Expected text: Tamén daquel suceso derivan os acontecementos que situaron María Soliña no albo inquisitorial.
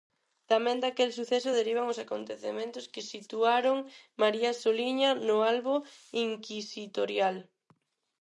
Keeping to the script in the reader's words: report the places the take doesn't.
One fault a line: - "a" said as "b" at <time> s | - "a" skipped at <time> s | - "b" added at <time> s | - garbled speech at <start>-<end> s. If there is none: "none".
none